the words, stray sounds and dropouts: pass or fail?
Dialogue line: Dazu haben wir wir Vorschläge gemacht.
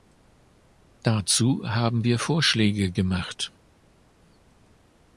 fail